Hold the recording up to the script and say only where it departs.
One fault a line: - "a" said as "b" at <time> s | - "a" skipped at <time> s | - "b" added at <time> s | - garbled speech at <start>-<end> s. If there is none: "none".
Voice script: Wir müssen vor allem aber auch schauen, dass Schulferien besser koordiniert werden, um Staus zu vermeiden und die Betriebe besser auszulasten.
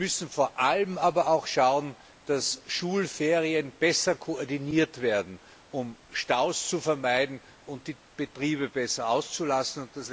none